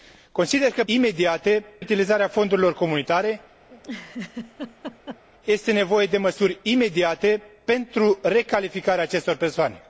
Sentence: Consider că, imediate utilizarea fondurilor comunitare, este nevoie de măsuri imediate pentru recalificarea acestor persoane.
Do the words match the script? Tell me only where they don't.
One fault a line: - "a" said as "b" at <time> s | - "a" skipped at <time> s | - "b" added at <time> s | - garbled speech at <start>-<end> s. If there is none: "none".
none